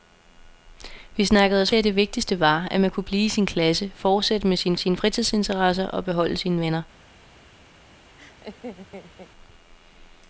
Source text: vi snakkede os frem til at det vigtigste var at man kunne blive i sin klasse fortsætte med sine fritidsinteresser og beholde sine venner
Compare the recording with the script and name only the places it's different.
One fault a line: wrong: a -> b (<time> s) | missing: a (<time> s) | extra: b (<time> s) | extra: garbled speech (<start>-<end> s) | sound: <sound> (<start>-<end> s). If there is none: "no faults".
missing: frem til (1.7 s)
extra: sine (4.8 s)
sound: laugh (8.2-9.3 s)